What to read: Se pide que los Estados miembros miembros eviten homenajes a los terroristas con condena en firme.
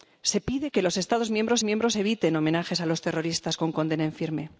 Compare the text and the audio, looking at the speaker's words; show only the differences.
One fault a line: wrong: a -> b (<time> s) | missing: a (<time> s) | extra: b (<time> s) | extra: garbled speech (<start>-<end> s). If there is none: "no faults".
no faults